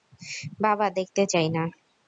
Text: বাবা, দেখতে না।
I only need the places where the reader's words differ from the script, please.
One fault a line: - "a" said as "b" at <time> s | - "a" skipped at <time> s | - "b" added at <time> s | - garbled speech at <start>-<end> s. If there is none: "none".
- "চাই" added at 1.2 s